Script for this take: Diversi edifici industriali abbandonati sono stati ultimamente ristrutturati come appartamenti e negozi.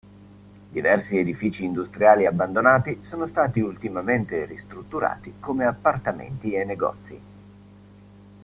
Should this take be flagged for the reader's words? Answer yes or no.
no